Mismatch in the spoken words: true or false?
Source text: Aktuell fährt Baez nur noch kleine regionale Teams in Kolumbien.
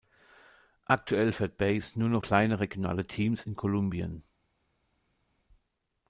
false